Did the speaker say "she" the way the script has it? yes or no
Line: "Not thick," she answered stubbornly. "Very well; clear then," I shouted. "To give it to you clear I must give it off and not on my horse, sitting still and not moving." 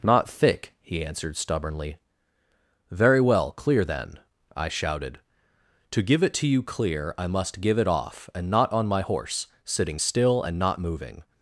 no